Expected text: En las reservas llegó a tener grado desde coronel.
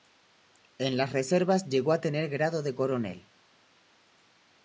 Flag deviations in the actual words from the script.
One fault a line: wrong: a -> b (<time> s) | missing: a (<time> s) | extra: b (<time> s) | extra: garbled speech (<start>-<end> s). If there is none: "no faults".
wrong: desde -> de (2.6 s)